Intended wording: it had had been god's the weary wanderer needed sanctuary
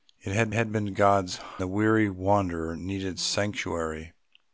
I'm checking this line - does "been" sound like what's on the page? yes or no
yes